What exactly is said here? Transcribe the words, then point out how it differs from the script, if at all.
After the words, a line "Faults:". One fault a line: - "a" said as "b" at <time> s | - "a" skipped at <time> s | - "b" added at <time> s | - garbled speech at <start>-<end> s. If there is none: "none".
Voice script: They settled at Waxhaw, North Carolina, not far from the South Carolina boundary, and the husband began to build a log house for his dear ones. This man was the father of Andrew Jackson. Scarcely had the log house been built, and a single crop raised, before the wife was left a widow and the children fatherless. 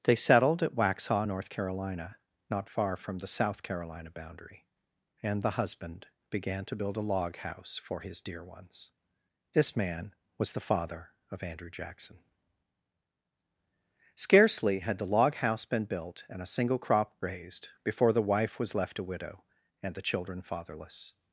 They settled at Waxhaw, North Carolina, not far from the South Carolina boundary, and the husband began to build a log house for his dear ones. This man was the father of Andrew Jackson. Scarcely had the log house been built, and a single crop raised, before the wife was left a widow and the children fatherless.
Faults:
none